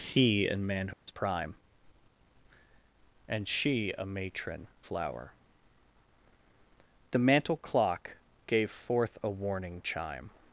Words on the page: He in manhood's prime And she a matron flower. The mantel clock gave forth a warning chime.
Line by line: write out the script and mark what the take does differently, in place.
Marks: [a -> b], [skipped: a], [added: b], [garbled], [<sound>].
He in manhood's [dropout] prime And she a matron flower. The mantel clock gave forth a warning chime.